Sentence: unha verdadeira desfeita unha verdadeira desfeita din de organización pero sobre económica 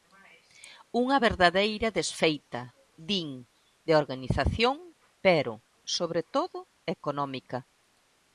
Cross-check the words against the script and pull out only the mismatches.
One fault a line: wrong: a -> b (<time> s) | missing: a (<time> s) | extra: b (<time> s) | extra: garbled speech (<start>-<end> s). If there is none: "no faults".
missing: unha verdadeira desfeita (2.6 s)
extra: todo (6.4 s)